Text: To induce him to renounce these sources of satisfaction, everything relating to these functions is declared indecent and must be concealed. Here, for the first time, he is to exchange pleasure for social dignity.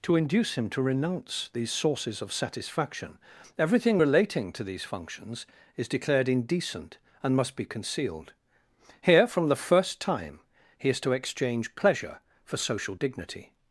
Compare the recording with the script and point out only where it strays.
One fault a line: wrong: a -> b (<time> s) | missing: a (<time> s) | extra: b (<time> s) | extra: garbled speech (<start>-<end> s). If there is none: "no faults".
wrong: for -> from (9.3 s)